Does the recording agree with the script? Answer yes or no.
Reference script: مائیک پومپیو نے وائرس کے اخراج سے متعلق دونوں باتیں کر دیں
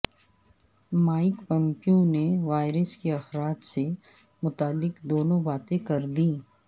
yes